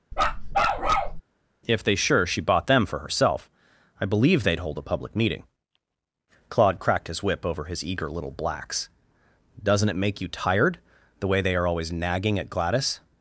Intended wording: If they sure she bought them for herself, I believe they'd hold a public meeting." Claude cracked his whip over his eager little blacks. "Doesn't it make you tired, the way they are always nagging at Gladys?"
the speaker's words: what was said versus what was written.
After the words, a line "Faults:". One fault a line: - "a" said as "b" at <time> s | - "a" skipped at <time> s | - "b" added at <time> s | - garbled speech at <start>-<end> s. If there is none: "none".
If they sure she bought them for herself, I believe they'd hold a public meeting." Claude cracked his whip over his eager little blacks. "Doesn't it make you tired, the way they are always nagging at Gladys?"
Faults:
none